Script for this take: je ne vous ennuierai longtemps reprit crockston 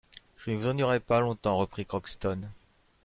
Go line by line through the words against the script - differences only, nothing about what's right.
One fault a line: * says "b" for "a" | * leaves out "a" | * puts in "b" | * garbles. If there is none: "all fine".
* puts in "pas"